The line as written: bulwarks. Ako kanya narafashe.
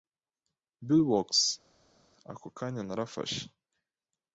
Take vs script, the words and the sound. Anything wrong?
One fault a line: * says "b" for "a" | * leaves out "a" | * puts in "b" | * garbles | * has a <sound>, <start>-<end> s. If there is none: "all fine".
all fine